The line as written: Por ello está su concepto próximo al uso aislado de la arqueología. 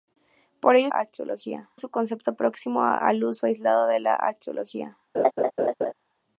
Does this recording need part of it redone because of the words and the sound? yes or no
yes